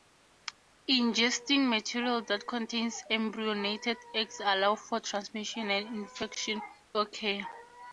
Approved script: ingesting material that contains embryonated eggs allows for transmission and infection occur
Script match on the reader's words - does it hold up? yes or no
yes